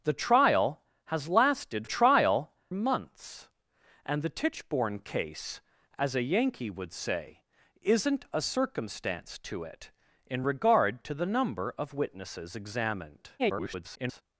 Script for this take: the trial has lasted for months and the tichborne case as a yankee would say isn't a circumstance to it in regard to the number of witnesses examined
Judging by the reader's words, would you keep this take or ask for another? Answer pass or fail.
fail